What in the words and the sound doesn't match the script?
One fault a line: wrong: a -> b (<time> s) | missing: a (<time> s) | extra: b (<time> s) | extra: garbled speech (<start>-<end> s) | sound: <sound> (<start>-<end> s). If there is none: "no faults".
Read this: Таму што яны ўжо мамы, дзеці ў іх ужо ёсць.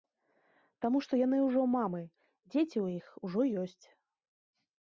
no faults